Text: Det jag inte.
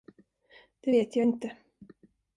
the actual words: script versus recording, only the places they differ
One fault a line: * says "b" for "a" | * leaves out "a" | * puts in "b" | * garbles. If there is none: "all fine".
* puts in "vet"